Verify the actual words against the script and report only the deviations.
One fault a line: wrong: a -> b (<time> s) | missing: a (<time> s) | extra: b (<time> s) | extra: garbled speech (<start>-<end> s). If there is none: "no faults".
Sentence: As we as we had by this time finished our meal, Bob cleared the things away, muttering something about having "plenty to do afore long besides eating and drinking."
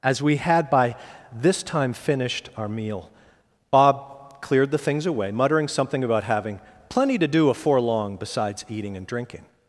missing: as we (0.4 s)